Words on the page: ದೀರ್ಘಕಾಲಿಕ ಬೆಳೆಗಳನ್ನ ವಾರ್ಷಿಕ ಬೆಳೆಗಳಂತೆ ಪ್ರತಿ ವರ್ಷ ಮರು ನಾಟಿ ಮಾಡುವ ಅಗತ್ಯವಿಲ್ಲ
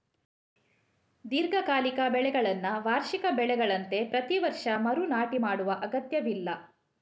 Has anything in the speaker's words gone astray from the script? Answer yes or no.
no